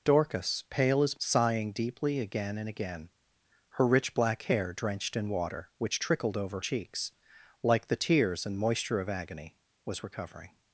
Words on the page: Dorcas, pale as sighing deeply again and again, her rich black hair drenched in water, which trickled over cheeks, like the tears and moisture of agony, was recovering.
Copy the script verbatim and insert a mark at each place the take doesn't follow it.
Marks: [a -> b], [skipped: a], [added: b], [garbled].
Dorcas, pale as sighing deeply again and again, her rich black hair drenched in water, which trickled over cheeks, like the tears and moisture of agony, was recovering.